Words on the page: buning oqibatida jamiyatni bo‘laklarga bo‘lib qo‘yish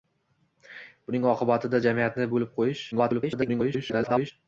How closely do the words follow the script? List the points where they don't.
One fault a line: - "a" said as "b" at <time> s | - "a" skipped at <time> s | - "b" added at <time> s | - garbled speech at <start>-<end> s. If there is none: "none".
- "bo‘laklarga" skipped at 2.3 s
- garbled speech at 2.9-4.3 s